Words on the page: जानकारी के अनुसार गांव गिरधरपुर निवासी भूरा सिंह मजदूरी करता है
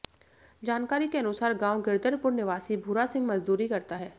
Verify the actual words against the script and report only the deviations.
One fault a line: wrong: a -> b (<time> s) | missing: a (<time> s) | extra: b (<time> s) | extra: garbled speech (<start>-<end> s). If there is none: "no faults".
no faults